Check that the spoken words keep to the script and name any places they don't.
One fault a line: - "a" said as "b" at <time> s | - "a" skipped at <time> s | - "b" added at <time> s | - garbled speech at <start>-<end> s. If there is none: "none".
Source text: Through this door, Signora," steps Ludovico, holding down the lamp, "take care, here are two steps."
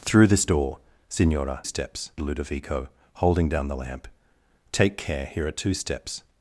none